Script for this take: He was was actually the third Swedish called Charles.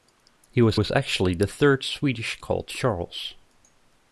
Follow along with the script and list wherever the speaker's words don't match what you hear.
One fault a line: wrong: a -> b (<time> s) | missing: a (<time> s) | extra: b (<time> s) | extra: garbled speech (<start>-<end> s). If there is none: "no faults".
no faults